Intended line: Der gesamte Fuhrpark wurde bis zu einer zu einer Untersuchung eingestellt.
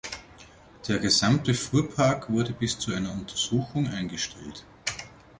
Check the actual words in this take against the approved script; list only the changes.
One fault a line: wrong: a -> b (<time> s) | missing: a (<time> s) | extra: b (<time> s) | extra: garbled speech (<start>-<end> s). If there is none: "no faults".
missing: zu einer (3.1 s)